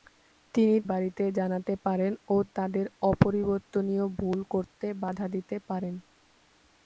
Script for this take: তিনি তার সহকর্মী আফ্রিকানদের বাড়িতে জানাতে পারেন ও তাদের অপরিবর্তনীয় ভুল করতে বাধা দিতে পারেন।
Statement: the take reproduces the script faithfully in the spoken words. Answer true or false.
false